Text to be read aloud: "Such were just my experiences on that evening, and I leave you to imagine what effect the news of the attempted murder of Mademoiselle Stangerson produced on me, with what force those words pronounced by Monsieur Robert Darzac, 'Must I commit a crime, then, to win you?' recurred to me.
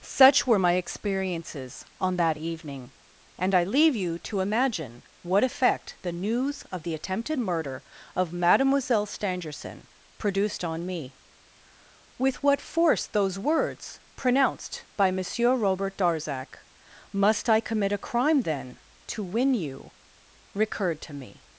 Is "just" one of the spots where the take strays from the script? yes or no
yes